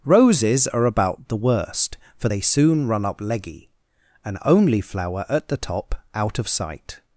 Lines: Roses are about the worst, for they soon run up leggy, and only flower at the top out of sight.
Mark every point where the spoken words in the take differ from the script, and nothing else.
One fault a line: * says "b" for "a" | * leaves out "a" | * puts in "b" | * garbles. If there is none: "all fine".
all fine